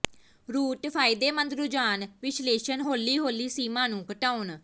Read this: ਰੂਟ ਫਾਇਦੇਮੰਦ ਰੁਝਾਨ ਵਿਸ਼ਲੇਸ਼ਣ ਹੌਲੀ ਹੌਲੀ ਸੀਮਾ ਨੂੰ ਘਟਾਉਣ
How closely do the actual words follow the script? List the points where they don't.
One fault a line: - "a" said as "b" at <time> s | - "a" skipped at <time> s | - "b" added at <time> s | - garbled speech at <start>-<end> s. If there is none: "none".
none